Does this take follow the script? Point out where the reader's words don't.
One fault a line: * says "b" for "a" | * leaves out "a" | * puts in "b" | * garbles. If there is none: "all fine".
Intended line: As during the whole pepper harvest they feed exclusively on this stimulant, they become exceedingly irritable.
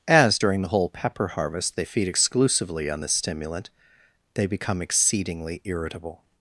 all fine